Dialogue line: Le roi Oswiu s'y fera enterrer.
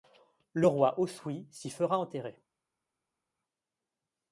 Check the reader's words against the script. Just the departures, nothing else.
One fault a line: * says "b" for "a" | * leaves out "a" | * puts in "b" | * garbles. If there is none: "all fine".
all fine